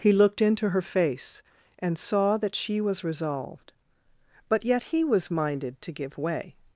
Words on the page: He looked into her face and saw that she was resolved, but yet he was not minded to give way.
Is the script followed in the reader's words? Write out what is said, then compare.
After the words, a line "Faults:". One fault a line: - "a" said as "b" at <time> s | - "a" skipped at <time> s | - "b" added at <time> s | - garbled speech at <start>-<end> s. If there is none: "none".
He looked into her face and saw that she was resolved, but yet he was minded to give way.
Faults:
- "not" skipped at 5.3 s